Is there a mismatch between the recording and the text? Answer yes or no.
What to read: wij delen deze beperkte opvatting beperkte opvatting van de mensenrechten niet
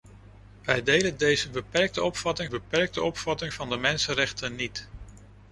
no